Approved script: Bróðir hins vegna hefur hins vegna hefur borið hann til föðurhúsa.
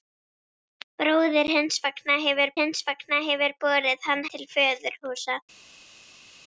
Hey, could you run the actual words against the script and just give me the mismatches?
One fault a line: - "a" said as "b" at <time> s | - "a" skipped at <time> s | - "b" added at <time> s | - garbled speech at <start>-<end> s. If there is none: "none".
none